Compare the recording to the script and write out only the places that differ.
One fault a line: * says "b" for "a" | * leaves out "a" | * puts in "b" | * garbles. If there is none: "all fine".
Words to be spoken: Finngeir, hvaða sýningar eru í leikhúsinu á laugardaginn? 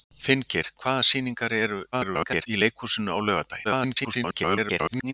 * garbles
* garbles